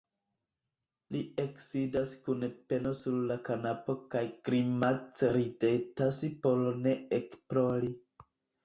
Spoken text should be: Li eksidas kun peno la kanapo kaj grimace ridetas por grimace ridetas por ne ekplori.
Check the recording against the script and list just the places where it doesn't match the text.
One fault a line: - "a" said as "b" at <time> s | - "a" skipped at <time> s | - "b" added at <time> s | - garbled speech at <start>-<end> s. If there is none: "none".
- "sur" added at 3.0 s
- "grimace ridetas por" skipped at 6.7 s